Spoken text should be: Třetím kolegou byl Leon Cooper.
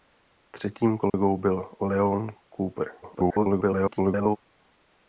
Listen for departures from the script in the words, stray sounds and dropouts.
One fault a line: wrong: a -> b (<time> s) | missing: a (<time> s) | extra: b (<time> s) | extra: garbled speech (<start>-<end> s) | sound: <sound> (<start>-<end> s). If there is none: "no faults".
sound: dropout (1.1-1.1 s)
extra: garbled speech (3.0-4.4 s)